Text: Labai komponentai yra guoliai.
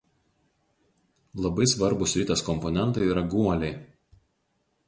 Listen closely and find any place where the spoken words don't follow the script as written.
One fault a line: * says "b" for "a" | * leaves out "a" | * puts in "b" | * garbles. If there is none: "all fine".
* puts in "svarbūs ritės"